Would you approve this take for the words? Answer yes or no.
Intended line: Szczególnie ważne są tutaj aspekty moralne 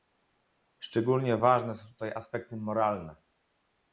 yes